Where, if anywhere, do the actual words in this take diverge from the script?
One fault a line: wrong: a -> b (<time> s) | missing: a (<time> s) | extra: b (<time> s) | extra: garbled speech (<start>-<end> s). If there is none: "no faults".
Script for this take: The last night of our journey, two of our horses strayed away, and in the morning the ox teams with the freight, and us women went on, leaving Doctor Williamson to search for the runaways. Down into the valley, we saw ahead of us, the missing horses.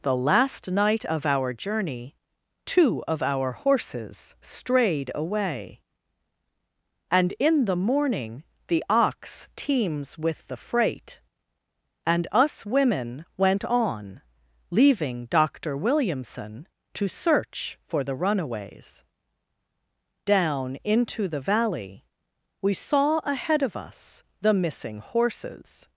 no faults